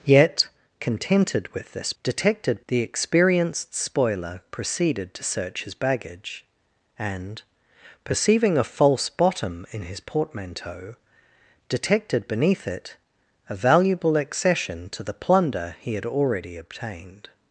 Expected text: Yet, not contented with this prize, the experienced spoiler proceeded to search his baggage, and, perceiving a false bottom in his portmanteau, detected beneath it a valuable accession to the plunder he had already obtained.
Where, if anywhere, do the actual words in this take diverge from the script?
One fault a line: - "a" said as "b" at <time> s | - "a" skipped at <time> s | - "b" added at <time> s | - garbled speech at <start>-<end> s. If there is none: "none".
- "not" skipped at 0.5 s
- "prize" said as "detected" at 2.0 s